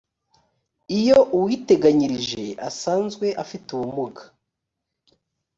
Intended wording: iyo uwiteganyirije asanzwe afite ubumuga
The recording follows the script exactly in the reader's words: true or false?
true